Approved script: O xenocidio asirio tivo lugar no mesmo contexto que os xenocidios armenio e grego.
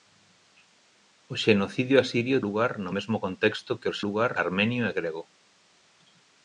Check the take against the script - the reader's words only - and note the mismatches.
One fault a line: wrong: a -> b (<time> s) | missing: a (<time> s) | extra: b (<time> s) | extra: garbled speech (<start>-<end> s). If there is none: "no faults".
missing: tivo (2.4 s)
wrong: xenocidios -> lugar (4.0 s)